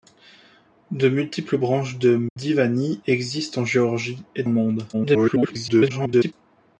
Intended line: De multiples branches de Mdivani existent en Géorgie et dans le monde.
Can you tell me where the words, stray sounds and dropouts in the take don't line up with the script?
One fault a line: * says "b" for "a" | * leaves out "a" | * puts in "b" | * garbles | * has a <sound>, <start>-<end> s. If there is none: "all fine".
* has a dropout, 2.3-2.4 s
* leaves out "dans"
* garbles